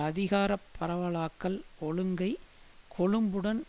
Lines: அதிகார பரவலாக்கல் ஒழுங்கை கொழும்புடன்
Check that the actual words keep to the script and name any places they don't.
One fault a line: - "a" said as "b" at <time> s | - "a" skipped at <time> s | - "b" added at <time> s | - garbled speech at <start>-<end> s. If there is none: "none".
none